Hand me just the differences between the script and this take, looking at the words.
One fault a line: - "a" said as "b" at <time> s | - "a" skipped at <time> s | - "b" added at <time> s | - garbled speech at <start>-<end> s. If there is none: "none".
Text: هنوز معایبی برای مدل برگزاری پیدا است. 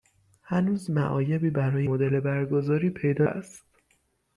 none